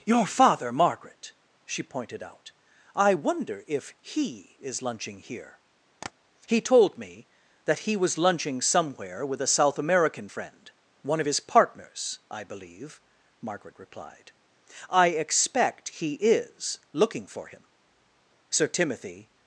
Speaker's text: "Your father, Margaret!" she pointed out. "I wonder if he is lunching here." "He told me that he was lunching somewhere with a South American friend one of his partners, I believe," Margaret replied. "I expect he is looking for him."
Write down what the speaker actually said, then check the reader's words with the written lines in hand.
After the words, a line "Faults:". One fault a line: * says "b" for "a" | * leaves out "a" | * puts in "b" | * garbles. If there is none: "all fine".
"Your father, Margaret!" she pointed out. "I wonder if he is lunching here." "He told me that he was lunching somewhere with a South American friend one of his partners, I believe," Margaret replied. "I expect he is looking for him." Sir Timothy
Faults:
* puts in "Sir Timothy"